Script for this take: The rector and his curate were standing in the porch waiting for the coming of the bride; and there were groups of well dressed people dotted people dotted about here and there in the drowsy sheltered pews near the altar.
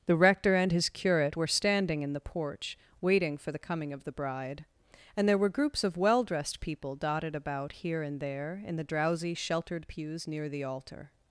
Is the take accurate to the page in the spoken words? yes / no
no